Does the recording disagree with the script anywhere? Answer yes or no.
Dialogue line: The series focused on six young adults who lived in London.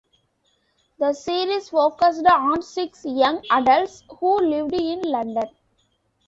no